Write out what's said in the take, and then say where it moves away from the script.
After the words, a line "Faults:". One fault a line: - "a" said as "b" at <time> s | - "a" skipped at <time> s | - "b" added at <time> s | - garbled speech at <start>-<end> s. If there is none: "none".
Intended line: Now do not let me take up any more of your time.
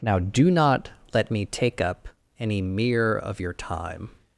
Now do not let me take up any mere of your time.
Faults:
- "more" said as "mere" at 2.6 s